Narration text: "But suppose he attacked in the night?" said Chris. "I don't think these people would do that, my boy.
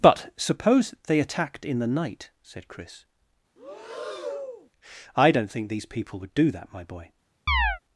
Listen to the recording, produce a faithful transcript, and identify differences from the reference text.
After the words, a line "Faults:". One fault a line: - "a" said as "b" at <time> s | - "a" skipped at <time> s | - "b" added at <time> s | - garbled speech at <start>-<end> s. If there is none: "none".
"But suppose they attacked in the night?" said Chris. "I don't think these people would do that, my boy.
Faults:
- "he" said as "they" at 1.1 s